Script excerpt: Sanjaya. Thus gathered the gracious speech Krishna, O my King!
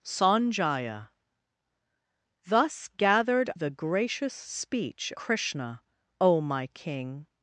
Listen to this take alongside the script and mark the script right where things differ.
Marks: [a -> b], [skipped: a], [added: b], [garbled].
Sanjaya. Thus gathered the gracious speech Krishna, O my King!